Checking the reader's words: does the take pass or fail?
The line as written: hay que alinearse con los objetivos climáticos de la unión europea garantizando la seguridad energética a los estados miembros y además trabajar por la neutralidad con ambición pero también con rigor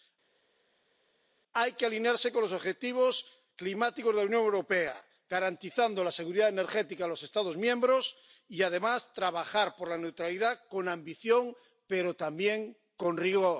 pass